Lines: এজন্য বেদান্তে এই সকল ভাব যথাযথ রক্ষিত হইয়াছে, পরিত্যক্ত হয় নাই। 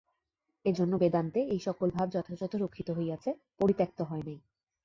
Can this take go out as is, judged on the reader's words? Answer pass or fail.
pass